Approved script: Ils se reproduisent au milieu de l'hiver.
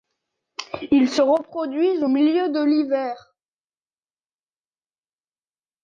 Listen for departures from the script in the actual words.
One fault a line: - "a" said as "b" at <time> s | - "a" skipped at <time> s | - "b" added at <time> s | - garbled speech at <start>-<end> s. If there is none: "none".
none